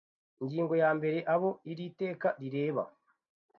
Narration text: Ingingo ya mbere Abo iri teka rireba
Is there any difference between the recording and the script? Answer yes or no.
no